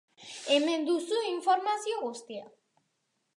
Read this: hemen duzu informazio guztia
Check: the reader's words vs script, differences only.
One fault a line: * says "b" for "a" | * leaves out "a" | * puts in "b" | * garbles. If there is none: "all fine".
all fine